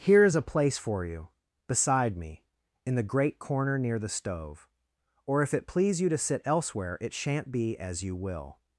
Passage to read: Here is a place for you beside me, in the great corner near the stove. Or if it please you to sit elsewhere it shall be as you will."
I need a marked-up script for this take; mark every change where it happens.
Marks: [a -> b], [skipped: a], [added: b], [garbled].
Here is a place for you beside me, in the great corner near the stove. Or if it please you to sit elsewhere it [shall -> shan't] be as you will."